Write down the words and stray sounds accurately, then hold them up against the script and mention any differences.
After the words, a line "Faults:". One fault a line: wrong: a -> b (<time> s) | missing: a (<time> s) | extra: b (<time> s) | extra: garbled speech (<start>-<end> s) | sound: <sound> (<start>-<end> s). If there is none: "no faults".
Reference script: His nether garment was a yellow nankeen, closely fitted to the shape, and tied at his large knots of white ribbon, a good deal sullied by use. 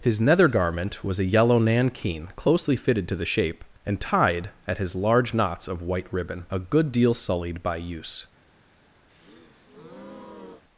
His nether garment was a yellow nankeen, closely fitted to the shape, and tied at his large knots of white ribbon, a good deal sullied by use.
Faults:
sound: breath (9.1-10.6 s)